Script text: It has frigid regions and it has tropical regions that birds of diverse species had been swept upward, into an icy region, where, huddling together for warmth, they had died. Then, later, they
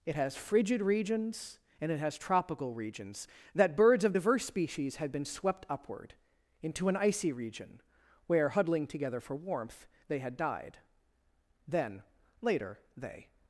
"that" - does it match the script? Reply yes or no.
yes